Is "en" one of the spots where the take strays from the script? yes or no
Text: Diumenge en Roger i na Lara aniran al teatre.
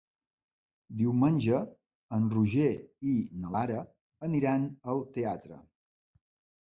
no